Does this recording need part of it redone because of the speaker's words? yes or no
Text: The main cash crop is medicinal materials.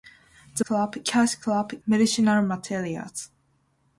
yes